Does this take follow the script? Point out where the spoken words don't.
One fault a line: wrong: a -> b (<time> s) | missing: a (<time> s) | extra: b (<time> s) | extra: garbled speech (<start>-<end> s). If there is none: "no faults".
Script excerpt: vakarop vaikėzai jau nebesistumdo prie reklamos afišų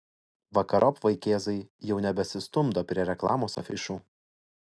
no faults